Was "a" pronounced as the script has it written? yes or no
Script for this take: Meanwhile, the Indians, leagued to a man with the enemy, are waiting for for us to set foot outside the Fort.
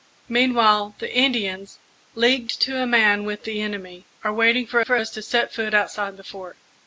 yes